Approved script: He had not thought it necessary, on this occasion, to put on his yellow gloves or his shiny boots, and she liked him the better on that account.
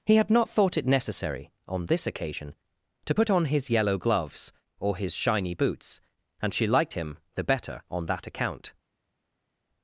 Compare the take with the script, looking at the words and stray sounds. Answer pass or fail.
pass